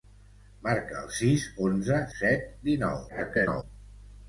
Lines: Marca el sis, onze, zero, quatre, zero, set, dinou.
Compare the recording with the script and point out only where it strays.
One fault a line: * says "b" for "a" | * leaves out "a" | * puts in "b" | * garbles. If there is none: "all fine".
* leaves out "zero quatre zero"
* garbles